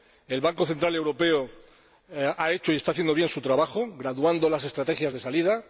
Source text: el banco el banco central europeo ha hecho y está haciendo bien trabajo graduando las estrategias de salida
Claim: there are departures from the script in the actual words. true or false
true